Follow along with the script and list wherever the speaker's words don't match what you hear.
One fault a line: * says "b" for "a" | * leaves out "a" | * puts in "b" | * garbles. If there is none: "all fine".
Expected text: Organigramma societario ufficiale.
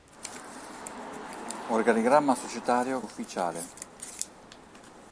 all fine